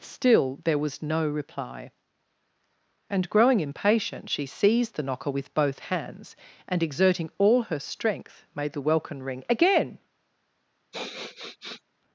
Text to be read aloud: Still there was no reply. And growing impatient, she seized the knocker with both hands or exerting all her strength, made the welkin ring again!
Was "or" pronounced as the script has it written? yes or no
no